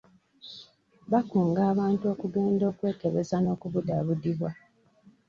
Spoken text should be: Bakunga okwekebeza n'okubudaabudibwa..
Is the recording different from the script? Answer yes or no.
yes